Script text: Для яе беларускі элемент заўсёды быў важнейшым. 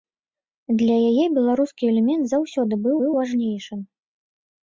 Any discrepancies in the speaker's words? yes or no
yes